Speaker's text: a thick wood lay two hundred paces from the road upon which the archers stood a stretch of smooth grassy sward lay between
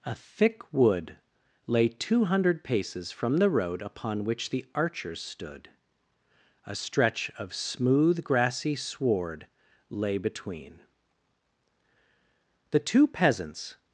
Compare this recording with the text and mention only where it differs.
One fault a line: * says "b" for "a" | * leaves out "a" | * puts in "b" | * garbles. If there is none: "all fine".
* puts in "the two peasants"